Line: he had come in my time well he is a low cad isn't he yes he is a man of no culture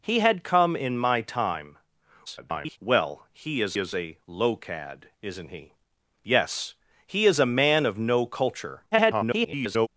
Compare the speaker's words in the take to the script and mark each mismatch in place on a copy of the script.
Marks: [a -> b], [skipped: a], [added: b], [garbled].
he had come in my time [garbled] well he is [added: is] a low cad isn't he yes he is a man of no culture [garbled]